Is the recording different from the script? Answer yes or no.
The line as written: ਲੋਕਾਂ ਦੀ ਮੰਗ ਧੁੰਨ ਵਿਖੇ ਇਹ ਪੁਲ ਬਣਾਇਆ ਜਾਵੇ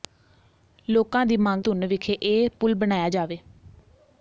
no